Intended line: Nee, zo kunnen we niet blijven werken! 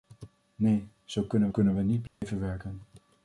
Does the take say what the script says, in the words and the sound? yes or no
no